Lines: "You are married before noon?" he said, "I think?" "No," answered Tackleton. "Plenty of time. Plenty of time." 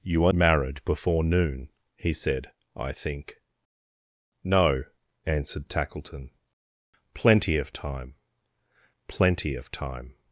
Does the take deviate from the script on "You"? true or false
false